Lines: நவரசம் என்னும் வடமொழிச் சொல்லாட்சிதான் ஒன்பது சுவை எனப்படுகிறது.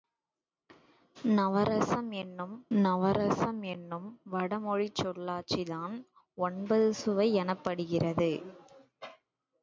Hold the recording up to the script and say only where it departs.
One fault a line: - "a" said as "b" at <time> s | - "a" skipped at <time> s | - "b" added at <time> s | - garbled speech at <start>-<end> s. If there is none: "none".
- "நவரசம் என்னும்" added at 2.8 s